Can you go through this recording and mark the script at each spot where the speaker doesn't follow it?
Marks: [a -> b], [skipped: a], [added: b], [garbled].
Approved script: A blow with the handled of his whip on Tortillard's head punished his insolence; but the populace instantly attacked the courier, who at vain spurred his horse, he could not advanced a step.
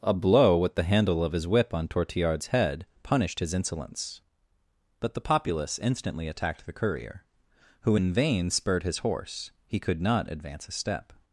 A blow with the [handled -> handle] of his whip on Tortillard's head punished his insolence; but the populace instantly attacked the courier, who [at -> in] vain spurred his horse, he could not [advanced -> advance] a step.